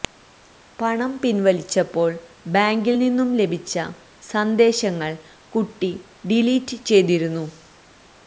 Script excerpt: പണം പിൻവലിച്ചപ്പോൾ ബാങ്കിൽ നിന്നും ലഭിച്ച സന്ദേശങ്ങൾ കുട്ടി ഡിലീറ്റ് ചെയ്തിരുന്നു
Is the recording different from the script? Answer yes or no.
no